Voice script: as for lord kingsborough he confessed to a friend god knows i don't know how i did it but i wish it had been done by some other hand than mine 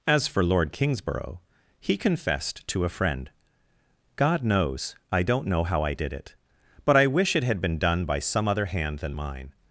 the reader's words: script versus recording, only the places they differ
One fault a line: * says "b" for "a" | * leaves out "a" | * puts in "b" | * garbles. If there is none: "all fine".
all fine